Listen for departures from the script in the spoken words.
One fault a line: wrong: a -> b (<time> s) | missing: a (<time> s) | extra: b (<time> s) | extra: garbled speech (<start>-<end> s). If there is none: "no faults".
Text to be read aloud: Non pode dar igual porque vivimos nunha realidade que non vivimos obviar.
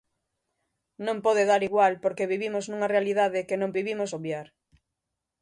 no faults